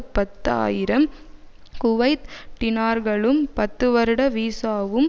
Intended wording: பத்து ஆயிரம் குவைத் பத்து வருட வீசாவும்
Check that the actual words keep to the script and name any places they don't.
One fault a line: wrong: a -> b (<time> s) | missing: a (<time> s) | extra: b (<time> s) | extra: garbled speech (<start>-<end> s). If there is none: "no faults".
extra: டினார்களும் (2.6 s)